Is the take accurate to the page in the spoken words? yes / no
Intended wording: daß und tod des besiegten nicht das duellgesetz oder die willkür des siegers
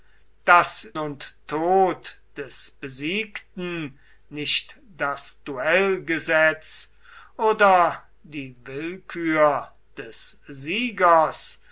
yes